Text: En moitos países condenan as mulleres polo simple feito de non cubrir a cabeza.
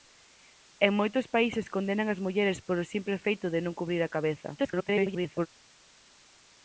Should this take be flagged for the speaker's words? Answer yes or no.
yes